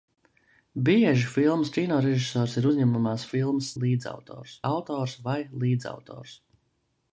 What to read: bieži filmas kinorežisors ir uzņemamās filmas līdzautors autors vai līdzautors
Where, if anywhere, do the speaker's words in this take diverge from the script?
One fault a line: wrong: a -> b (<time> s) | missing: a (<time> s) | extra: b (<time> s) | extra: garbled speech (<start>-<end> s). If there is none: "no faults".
no faults